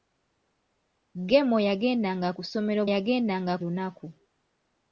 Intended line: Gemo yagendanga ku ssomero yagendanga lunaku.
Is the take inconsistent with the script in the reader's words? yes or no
no